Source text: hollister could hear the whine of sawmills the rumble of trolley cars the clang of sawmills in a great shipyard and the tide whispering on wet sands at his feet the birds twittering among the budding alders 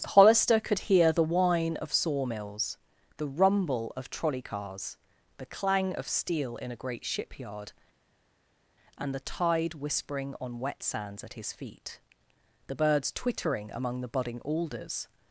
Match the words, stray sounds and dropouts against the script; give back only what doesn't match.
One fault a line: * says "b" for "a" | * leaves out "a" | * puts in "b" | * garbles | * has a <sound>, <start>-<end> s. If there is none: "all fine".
* says "steel" for "sawmills"